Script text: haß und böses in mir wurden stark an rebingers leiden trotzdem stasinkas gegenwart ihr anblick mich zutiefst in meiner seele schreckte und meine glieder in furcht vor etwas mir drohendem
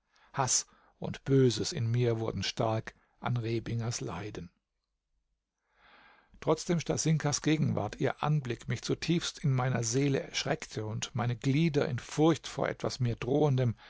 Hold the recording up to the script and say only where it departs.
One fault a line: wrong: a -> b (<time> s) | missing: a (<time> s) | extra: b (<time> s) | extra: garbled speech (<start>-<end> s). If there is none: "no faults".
no faults